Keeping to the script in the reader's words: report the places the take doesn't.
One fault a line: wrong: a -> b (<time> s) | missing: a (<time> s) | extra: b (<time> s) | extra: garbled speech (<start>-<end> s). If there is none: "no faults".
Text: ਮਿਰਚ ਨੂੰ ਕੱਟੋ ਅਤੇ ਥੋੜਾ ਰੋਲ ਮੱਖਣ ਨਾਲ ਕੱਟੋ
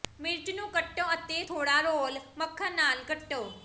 no faults